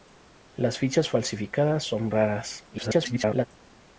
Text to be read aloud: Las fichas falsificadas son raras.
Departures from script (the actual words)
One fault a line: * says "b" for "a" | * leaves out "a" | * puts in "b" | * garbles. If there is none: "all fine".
* garbles